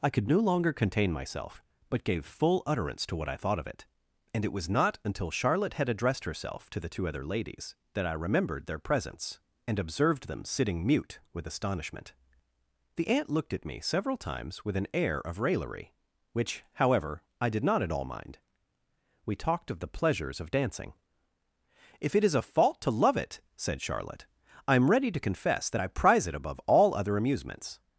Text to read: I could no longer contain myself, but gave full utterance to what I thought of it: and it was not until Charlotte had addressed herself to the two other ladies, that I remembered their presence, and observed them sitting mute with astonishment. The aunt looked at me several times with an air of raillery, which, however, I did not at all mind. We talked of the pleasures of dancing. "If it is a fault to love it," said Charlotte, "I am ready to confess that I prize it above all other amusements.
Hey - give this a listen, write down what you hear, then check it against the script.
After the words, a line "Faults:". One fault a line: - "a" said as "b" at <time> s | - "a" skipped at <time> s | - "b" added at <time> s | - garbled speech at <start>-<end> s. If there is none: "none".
I could no longer contain myself, but gave full utterance to what I thought of it: and it was not until Charlotte had addressed herself to the two other ladies, that I remembered their presence, and observed them sitting mute with astonishment. The aunt looked at me several times with an air of raillery, which, however, I did not at all mind. We talked of the pleasures of dancing. "If it is a fault to love it," said Charlotte, "I am ready to confess that I prize it above all other amusements.
Faults:
none